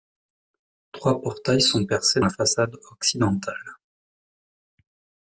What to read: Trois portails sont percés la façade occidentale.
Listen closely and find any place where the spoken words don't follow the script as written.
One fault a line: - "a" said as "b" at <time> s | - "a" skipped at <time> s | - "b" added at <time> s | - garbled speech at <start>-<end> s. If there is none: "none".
none